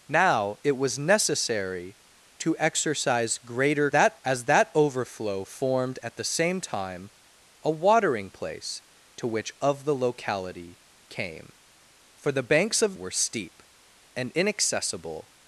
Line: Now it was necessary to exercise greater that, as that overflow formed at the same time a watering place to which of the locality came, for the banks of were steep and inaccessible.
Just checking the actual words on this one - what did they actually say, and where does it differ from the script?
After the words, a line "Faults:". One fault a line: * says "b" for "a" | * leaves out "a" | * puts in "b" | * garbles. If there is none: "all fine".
Now it was necessary to exercise greater that, as that overflow formed at the same time a watering place to which of the locality came, for the banks of were steep and inaccessible.
Faults:
all fine